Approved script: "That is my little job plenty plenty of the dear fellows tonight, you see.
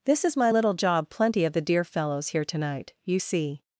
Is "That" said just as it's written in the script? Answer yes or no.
no